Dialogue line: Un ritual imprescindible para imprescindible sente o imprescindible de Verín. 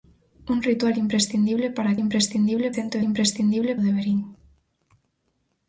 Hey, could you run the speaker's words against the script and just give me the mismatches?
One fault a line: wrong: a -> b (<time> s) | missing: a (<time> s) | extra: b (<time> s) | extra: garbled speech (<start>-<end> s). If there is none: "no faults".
no faults